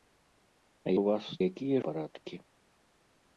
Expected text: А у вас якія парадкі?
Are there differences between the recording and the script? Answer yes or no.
no